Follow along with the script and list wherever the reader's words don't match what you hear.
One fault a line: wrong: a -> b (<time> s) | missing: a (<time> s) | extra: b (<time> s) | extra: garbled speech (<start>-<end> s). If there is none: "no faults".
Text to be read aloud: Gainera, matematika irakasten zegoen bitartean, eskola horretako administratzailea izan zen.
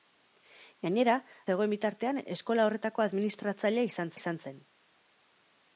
missing: matematika irakasten (1.2 s)
extra: izan (4.2 s)